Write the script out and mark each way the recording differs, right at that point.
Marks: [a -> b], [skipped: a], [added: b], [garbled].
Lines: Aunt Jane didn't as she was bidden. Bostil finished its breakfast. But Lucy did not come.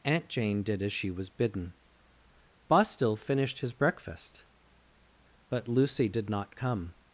Aunt Jane [didn't -> did] as she was bidden. Bostil finished [its -> his] breakfast. But Lucy did not come.